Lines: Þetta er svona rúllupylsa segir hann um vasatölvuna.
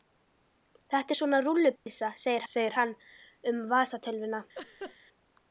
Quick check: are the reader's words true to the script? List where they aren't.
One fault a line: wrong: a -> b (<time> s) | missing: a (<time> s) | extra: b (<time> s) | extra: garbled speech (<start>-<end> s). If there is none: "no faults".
extra: segir (2.5 s)